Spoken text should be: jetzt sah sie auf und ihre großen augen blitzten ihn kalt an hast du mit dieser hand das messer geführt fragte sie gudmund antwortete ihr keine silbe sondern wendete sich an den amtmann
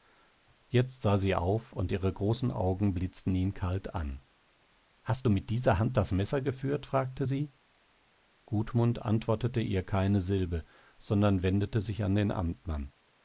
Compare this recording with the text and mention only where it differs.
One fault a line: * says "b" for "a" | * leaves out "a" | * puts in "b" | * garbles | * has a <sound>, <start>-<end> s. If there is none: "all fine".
all fine